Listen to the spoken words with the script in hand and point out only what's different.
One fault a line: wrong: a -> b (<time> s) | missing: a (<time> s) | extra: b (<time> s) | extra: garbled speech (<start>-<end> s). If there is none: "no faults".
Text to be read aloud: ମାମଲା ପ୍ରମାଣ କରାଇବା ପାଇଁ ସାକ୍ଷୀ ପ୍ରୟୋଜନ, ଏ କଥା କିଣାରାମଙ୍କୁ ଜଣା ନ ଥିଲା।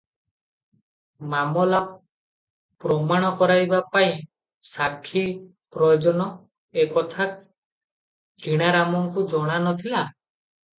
no faults